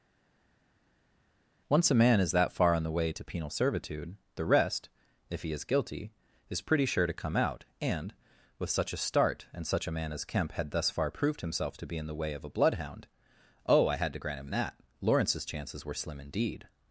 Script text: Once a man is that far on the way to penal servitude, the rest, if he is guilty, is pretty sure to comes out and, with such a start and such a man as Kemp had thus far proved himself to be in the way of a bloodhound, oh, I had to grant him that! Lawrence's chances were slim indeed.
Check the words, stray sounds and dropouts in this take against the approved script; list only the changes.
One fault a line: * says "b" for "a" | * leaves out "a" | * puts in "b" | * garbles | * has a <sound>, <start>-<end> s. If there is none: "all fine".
* says "come" for "comes"